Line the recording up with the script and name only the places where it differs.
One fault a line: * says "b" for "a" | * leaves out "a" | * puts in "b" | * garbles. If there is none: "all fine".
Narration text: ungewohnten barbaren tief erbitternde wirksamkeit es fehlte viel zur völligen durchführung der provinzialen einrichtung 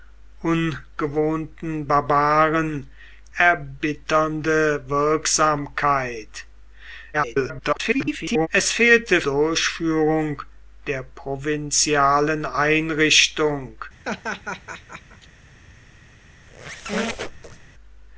* leaves out "tief"
* garbles
* leaves out "viel zur völligen"